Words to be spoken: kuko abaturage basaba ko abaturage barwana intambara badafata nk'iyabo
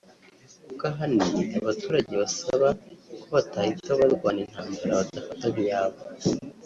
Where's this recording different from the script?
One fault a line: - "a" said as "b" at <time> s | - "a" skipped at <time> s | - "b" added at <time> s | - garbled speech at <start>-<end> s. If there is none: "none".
- "ahanini" added at 0.9 s
- "abaturage" said as "batahita" at 3.4 s